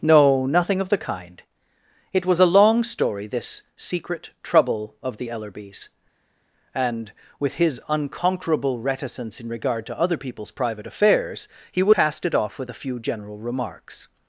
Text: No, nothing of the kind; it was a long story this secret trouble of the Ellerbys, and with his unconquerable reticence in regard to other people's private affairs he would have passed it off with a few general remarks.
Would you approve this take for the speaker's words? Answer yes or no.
no